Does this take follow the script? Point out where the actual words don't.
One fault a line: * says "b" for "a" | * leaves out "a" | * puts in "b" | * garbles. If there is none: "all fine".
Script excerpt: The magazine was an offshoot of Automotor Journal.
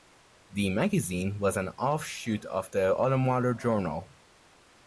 * puts in "The"